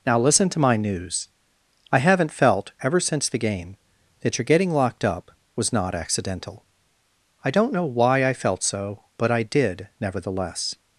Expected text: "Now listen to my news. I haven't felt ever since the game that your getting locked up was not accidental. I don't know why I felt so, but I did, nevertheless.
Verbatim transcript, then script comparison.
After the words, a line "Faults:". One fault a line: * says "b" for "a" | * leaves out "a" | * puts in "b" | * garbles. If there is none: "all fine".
"Now listen to my news. I haven't felt ever since the game that your getting locked up was not accidental. I don't know why I felt so, but I did, nevertheless.
Faults:
all fine